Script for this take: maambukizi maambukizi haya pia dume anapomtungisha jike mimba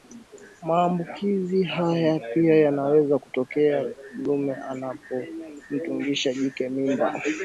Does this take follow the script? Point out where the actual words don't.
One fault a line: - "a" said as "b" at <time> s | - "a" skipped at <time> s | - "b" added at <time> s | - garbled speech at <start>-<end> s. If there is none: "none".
- "maambukizi" skipped at 1.6 s
- "yanaweza kutokea" added at 2.5 s